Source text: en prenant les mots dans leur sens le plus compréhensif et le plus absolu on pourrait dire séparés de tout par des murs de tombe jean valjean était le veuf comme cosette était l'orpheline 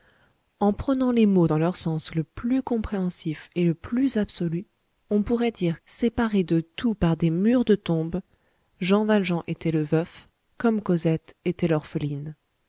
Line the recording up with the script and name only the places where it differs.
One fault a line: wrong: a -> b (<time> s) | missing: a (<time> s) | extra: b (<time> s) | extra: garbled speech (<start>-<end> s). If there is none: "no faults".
no faults